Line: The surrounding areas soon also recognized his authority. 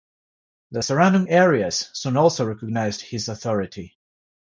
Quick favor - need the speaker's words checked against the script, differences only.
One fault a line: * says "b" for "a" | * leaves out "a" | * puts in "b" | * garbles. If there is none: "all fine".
all fine